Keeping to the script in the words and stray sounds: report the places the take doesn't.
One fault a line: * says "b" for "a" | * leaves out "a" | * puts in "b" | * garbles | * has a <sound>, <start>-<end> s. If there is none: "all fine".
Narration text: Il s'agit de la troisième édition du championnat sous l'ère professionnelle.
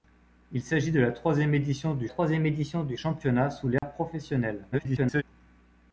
* puts in "troisième édition du"
* has a dropout, 3.8-3.8 s
* garbles